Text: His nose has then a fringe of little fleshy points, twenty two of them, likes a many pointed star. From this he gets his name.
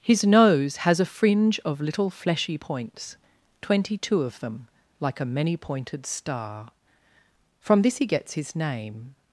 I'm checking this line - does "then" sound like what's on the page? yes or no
no